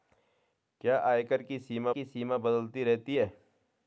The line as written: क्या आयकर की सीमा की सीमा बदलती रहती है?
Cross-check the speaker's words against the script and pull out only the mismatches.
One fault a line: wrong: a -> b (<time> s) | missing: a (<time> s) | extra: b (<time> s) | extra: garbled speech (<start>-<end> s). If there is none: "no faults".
no faults